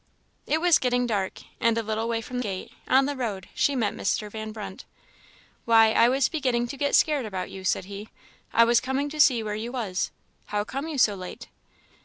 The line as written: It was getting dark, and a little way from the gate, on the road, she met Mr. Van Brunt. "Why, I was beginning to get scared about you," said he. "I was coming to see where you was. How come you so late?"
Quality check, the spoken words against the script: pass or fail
fail